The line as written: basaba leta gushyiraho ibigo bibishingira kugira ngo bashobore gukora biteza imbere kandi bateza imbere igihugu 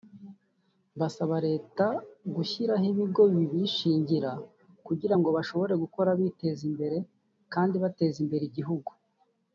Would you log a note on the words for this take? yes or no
no